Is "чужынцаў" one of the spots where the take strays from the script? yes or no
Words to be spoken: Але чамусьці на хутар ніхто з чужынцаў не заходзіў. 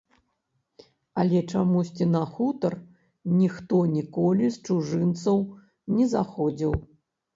no